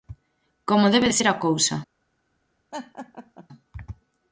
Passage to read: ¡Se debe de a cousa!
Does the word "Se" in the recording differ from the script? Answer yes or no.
yes